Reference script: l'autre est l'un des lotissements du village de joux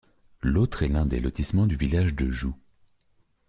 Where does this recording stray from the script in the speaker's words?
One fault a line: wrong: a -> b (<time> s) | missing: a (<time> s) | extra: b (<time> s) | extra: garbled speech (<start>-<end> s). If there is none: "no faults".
no faults